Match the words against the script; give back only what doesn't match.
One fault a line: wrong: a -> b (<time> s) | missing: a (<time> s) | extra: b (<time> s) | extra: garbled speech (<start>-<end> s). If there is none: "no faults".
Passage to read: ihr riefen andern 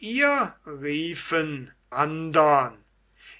no faults